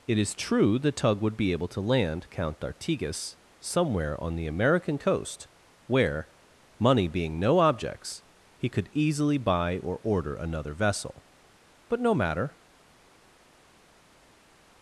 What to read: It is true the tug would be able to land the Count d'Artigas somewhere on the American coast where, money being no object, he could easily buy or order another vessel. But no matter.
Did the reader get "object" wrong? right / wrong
wrong